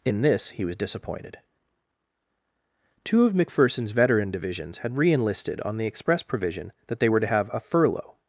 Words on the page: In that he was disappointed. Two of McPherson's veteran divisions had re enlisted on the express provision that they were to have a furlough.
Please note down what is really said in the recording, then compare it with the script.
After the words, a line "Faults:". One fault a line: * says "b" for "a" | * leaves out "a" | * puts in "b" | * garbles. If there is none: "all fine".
In this he was disappointed. Two of McPherson's veteran divisions had re enlisted on the express provision that they were to have a furlough.
Faults:
* says "this" for "that"